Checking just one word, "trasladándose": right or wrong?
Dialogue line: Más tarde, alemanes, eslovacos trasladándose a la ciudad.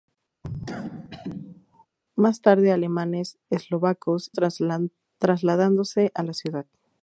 right